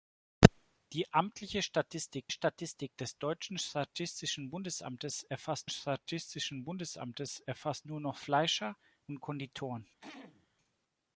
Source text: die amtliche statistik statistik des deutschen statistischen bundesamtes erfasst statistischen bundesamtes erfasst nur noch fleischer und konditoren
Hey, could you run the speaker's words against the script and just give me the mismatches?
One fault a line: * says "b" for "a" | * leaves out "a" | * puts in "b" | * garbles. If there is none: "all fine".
all fine